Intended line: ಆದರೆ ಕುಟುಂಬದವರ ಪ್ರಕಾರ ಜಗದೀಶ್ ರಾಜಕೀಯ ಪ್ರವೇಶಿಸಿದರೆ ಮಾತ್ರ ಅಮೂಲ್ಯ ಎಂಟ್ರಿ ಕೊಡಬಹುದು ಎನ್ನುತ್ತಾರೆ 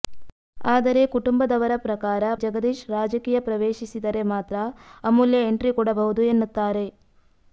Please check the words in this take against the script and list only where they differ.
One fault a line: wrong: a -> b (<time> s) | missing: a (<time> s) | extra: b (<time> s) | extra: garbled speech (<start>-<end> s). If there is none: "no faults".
no faults